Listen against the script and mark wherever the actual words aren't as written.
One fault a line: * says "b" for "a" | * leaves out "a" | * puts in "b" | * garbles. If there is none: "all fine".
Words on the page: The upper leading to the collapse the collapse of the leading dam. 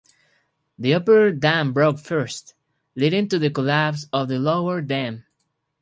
* puts in "dam broke first"
* leaves out "the collapse"
* says "lower" for "leading"